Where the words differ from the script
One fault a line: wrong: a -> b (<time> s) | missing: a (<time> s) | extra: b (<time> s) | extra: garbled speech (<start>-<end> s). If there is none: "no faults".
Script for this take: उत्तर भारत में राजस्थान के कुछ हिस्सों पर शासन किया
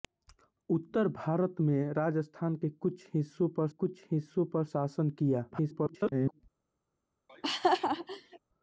extra: कुछ हिस्सों पर (3.7 s)
extra: garbled speech (5.5-6.4 s)